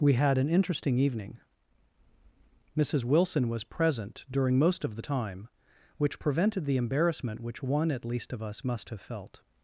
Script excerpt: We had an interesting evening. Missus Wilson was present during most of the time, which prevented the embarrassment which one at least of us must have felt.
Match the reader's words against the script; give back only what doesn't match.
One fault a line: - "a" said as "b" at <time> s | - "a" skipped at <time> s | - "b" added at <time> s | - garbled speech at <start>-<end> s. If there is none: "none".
none